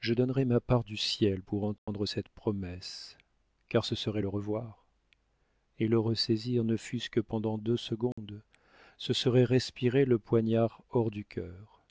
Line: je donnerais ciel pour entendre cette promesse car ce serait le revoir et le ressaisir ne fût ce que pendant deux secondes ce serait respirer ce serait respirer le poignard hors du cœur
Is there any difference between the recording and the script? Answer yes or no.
yes